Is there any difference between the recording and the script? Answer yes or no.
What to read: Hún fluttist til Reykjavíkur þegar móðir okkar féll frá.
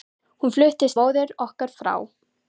yes